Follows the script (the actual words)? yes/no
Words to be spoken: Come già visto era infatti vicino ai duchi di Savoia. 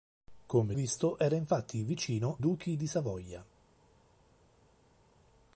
no